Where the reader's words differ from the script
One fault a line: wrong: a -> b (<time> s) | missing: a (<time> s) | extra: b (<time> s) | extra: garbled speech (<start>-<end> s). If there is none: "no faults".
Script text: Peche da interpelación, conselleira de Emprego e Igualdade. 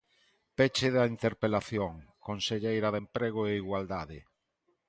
no faults